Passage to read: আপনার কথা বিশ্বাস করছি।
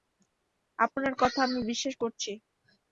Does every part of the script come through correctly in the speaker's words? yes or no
no